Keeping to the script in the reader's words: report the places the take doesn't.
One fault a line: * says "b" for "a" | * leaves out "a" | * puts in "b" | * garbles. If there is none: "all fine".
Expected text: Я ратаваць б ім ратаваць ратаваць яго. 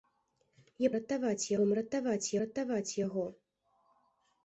all fine